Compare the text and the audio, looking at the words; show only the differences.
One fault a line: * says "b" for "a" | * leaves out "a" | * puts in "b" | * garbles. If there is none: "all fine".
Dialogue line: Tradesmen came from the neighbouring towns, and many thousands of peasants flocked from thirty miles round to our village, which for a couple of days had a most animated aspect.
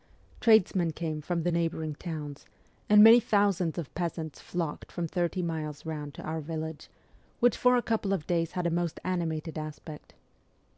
all fine